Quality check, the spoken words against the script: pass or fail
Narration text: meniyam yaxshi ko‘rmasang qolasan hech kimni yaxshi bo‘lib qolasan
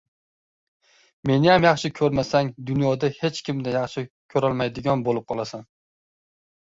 fail